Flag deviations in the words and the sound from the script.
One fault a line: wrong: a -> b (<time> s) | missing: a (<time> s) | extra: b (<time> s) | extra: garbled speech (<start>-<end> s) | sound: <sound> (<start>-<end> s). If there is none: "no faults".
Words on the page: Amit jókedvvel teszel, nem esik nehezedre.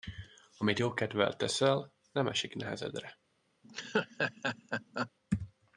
sound: laugh (3.6-5.1 s)